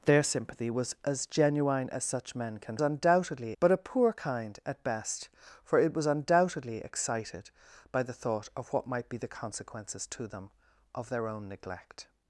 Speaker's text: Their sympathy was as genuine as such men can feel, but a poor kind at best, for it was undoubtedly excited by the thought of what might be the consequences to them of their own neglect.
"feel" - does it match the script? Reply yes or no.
no